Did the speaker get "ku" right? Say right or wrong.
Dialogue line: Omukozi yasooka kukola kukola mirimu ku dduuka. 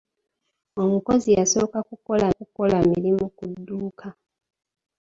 right